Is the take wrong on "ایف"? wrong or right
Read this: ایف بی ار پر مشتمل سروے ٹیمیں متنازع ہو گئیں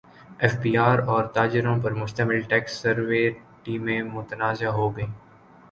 right